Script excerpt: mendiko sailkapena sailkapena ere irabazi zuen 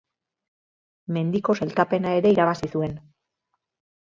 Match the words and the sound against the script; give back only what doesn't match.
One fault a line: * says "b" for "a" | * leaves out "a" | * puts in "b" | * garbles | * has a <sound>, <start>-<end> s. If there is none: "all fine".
* leaves out "sailkapena"